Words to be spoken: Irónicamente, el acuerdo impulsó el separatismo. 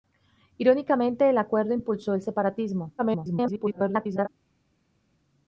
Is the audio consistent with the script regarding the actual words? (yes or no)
no